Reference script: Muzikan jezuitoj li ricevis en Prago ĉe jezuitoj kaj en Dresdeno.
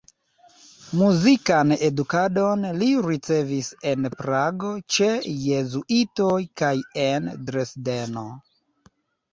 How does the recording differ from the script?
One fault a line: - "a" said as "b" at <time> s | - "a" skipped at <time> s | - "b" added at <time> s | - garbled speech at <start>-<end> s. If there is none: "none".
- "jezuitoj" said as "edukadon" at 1.9 s